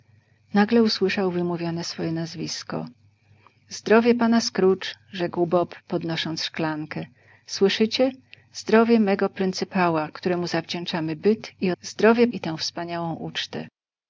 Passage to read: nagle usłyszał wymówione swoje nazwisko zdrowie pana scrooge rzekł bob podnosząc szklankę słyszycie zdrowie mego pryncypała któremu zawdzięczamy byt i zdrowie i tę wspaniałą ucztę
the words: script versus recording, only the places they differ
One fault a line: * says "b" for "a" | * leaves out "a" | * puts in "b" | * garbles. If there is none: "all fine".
all fine